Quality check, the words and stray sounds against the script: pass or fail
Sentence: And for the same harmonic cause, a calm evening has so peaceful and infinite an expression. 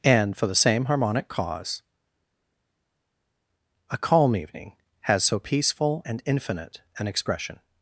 pass